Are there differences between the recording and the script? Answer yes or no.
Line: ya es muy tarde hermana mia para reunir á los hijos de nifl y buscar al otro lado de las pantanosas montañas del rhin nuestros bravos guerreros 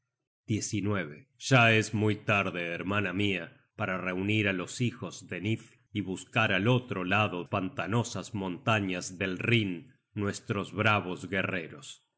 yes